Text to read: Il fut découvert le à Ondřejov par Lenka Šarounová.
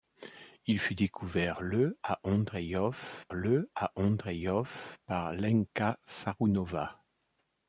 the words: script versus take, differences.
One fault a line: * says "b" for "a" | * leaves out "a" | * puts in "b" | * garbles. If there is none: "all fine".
* puts in "le à Ondřejov"